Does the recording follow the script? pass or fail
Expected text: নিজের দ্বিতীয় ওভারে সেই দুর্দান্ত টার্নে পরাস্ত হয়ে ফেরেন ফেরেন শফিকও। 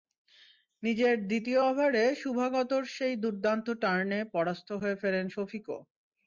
fail